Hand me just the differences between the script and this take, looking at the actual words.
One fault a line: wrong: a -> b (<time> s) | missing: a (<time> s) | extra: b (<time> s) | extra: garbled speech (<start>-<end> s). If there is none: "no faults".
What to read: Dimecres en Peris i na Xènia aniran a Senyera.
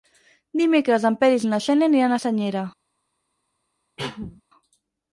no faults